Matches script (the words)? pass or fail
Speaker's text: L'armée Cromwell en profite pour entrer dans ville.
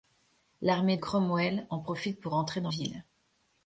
pass